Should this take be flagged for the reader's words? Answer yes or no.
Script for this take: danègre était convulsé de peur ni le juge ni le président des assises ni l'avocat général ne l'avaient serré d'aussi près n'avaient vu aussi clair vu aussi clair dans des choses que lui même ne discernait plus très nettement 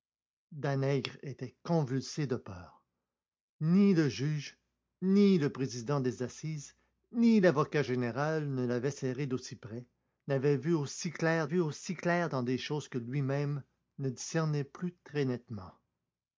no